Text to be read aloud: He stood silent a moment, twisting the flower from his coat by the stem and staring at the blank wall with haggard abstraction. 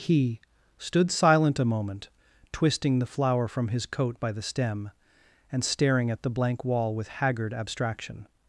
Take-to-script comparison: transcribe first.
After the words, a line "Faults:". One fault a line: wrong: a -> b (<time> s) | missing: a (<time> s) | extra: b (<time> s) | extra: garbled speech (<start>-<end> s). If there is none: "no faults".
He stood silent a moment, twisting the flower from his coat by the stem and staring at the blank wall with haggard abstraction.
Faults:
no faults